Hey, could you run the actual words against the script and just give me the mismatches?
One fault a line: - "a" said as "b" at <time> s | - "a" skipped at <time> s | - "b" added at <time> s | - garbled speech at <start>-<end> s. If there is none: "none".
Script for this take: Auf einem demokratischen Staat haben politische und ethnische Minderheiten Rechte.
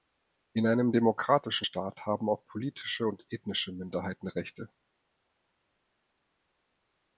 - "Auf" said as "In" at 0.5 s
- "auch" added at 2.3 s